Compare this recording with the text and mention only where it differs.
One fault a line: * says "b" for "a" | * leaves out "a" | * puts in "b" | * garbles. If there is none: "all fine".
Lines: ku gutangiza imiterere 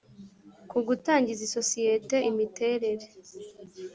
* puts in "isosiyete"